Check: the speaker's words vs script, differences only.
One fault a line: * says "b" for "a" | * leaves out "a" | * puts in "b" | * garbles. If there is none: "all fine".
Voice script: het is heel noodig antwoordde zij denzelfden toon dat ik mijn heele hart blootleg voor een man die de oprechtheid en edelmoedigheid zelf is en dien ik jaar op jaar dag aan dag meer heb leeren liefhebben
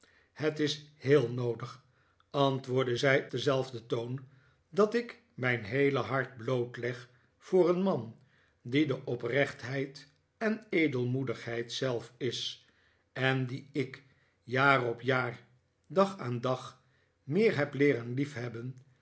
all fine